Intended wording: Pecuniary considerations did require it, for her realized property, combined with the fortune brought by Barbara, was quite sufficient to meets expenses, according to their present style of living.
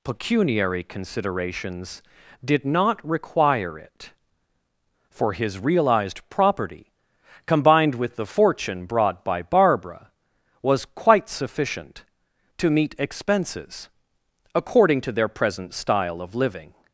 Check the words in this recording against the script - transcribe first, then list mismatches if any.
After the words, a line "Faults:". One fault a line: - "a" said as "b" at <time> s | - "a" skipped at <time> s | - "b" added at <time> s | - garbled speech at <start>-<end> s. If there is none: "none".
Pecuniary considerations did not require it, for his realized property, combined with the fortune brought by Barbara, was quite sufficient to meet expenses, according to their present style of living.
Faults:
- "not" added at 2.6 s
- "her" said as "his" at 5.3 s
- "meets" said as "meet" at 12.7 s